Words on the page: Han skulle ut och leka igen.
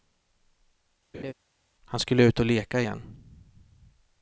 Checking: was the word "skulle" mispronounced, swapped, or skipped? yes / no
no